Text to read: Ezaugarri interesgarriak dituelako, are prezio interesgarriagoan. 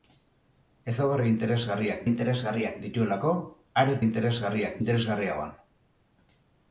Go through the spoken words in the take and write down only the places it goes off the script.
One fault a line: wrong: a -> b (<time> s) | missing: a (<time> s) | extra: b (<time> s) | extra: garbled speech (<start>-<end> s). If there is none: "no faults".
extra: interesgarriak (2.1 s)
wrong: prezio -> interesgarriak (4.1 s)